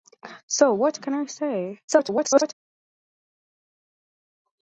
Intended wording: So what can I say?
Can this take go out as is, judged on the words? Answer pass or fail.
fail